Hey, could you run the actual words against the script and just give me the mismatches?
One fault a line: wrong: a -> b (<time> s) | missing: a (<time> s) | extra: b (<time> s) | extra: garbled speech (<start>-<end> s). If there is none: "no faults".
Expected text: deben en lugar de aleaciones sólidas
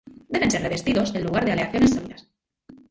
extra: ser revestidos (0.5 s)